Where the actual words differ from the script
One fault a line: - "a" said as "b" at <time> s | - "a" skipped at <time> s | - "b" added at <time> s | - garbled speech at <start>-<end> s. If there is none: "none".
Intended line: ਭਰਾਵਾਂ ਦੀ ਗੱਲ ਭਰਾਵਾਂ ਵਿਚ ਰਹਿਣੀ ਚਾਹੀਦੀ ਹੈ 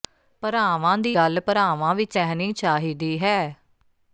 none